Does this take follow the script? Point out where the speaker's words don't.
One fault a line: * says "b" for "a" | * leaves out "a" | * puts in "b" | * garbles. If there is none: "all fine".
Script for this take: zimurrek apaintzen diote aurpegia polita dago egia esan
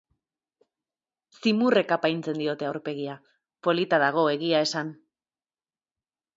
all fine